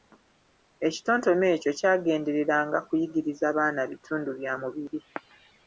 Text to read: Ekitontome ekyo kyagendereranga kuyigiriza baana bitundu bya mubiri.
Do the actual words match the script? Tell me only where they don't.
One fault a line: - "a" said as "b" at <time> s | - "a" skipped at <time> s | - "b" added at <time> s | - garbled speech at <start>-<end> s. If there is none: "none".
none